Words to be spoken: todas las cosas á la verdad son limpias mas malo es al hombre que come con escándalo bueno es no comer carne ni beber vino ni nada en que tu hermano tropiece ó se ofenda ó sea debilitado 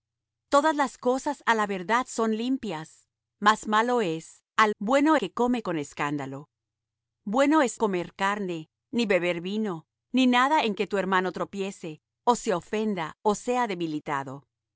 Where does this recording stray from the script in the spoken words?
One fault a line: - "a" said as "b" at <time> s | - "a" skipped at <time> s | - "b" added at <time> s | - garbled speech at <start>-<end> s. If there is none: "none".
- "hombre" said as "bueno" at 4.8 s
- "no" skipped at 7.8 s